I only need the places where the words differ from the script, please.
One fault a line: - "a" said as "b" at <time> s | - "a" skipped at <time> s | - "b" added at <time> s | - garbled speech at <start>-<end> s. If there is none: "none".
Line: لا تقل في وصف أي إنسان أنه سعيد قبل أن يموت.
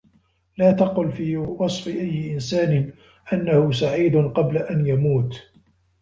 none